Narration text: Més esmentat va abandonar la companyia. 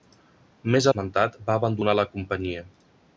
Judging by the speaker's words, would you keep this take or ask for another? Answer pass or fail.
pass